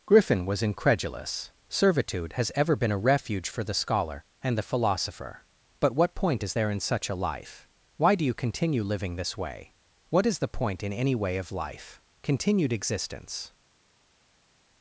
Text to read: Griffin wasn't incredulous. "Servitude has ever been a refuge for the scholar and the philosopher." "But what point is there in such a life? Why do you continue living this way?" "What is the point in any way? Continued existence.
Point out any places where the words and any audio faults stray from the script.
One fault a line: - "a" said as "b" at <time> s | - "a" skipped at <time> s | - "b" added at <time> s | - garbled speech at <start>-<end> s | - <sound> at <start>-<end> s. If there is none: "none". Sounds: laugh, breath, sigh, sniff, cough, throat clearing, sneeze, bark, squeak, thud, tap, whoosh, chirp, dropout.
- "wasn't" said as "was" at 0.5 s
- "of life" added at 11.4 s